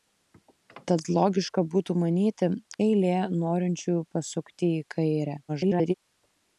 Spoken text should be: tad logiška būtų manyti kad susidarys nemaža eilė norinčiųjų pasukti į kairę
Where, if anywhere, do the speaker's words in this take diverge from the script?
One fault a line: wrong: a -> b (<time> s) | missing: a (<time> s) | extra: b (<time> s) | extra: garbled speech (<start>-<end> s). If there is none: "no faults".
missing: kad susidarys nemaža (2.5 s)
extra: garbled speech (5.5-5.9 s)